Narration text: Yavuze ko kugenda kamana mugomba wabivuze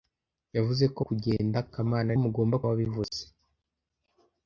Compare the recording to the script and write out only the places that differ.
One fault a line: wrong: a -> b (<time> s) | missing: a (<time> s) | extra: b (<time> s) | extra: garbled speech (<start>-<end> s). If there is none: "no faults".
no faults